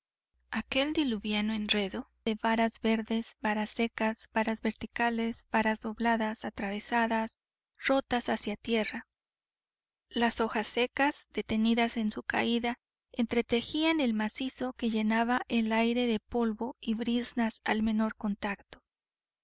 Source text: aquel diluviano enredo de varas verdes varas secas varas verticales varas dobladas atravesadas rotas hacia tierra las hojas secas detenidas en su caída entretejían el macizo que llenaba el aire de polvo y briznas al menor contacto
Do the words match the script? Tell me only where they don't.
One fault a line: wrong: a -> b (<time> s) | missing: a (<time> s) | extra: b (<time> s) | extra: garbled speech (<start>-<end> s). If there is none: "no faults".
no faults